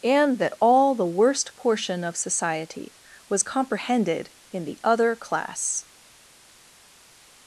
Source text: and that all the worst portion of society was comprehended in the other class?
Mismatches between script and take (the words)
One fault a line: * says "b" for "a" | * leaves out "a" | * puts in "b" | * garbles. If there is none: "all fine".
all fine